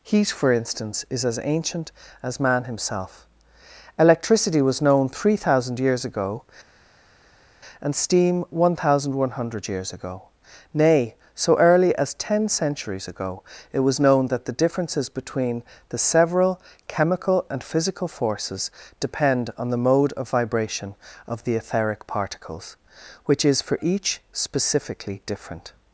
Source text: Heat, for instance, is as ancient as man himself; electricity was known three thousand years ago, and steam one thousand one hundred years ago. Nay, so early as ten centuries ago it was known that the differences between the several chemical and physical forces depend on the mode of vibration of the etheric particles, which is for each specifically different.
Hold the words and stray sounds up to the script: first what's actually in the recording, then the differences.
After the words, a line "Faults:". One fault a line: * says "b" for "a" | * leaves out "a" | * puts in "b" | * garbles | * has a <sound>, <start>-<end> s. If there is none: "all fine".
Heat, for instance, is as ancient as man himself; electricity was known three thousand years ago, and steam one thousand one hundred years ago. Nay, so early as ten centuries ago it was known that the differences between the several chemical and physical forces depend on the mode of vibration of the etheric particles, which is for each specifically different.
Faults:
all fine